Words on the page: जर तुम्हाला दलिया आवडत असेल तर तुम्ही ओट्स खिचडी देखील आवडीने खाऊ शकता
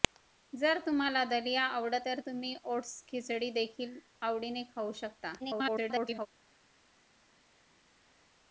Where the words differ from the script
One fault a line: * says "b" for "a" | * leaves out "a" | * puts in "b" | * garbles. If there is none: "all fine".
* leaves out "असेल"
* garbles